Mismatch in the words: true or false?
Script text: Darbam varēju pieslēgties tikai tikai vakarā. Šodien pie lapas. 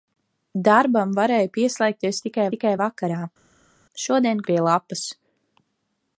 false